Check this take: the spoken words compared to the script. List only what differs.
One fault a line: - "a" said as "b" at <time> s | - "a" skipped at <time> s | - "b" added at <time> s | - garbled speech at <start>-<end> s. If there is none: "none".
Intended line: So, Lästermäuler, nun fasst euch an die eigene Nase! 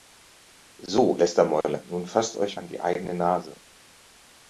none